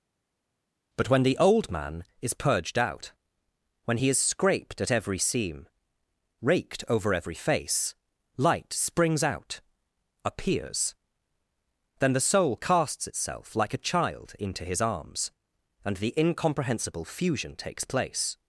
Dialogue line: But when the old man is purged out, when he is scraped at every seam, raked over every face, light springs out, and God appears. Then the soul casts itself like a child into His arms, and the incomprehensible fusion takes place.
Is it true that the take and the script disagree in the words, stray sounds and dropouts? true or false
true